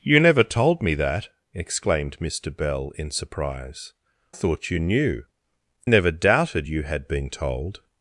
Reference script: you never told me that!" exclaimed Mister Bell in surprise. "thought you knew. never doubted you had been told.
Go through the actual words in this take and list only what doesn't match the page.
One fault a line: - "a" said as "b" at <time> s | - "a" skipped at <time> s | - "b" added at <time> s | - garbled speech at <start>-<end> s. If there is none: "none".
none